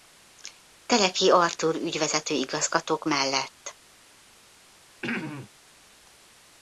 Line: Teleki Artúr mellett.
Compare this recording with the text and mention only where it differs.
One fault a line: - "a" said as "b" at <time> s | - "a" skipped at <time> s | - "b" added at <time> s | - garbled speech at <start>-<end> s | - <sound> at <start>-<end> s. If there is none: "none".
- "ügyvezető igazgatók" added at 1.8 s
- throat clearing at 5.0-5.5 s